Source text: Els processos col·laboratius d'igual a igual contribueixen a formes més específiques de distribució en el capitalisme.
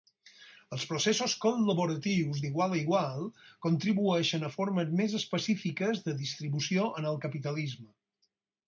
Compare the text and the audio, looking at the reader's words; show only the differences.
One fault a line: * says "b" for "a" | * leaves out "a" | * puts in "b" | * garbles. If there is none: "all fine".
all fine